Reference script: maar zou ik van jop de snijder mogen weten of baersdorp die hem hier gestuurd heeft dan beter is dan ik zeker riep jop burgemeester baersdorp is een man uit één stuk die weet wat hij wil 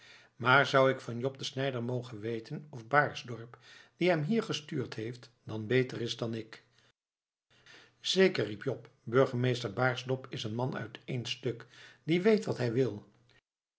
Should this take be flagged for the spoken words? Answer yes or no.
no